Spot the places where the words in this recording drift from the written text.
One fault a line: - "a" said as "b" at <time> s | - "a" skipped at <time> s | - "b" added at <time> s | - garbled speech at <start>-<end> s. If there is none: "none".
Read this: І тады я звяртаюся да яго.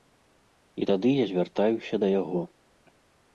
none